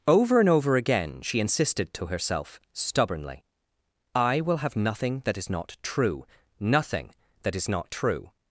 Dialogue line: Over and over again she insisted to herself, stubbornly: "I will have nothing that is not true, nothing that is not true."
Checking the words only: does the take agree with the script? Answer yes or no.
yes